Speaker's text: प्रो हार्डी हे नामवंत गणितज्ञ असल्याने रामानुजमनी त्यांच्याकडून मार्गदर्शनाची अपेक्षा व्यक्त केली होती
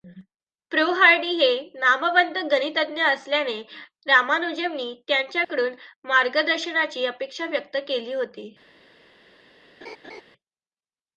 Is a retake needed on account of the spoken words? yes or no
no